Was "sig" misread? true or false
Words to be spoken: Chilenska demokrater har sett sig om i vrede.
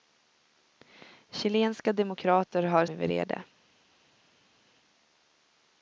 true